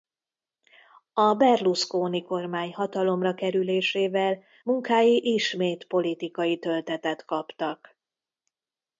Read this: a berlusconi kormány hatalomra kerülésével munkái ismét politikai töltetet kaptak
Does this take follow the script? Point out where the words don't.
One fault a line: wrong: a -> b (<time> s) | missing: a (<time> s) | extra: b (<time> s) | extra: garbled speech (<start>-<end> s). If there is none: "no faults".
no faults